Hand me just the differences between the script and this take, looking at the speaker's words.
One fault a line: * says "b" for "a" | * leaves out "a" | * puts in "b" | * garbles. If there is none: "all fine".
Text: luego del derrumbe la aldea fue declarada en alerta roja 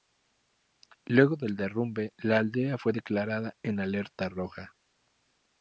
all fine